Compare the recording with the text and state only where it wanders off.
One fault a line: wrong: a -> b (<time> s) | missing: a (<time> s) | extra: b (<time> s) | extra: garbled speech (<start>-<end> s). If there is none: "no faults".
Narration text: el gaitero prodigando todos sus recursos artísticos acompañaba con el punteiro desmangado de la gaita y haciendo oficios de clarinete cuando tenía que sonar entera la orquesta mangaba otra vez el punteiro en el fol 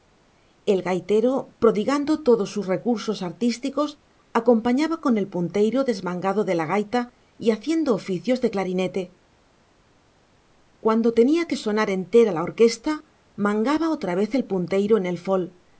no faults